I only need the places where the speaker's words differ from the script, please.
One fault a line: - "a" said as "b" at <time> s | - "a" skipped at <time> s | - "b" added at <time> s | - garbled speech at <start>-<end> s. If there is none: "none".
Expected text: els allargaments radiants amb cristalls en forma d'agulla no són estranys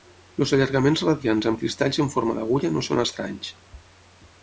none